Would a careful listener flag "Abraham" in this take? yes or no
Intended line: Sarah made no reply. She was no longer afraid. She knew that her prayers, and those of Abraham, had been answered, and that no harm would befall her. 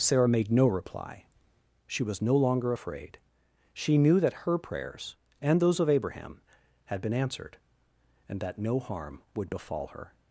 no